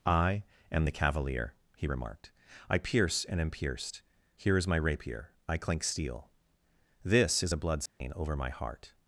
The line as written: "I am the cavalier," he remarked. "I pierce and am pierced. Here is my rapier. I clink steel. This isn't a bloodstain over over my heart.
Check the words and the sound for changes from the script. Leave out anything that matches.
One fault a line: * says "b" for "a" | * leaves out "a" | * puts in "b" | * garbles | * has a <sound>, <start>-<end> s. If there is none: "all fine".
* says "is" for "isn't"
* has a dropout, 7.9-8.0 s
* leaves out "over"